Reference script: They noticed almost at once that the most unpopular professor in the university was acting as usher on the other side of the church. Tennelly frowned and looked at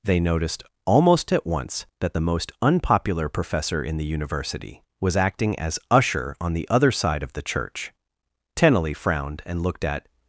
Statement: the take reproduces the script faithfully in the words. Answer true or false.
true